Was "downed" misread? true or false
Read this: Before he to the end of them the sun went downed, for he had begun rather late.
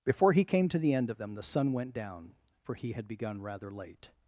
true